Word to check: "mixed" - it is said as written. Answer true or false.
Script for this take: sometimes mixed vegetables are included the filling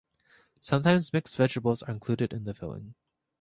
true